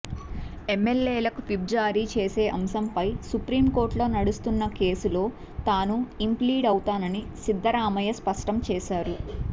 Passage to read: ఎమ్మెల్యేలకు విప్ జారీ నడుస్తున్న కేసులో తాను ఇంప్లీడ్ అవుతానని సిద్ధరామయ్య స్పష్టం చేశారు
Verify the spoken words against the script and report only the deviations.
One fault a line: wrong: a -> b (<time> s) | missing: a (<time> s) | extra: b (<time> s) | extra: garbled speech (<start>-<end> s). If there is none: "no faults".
extra: చేసే అంశంపై సుప్రీంకోర్టులో (2.1 s)